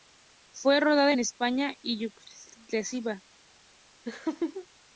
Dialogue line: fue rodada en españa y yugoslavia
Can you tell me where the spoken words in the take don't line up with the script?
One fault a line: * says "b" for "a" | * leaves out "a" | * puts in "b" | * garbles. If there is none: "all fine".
all fine